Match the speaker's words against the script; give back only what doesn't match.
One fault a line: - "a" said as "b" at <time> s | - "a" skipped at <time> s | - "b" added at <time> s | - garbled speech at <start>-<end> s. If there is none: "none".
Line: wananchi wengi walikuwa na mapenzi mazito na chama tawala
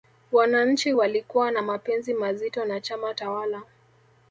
- "wengi" skipped at 0.9 s